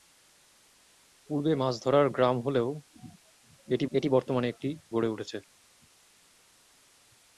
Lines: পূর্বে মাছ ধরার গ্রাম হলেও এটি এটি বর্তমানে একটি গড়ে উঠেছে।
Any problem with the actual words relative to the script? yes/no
no